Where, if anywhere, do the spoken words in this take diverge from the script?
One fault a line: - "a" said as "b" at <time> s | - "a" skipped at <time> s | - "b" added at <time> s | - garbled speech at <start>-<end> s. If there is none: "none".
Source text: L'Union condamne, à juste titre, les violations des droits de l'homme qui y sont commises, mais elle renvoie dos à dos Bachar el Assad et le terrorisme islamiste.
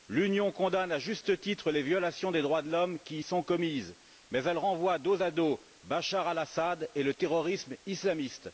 none